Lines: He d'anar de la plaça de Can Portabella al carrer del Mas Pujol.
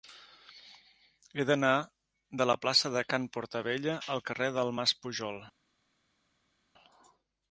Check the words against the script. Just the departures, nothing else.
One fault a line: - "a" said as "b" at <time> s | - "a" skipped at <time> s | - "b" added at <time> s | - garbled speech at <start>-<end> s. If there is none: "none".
none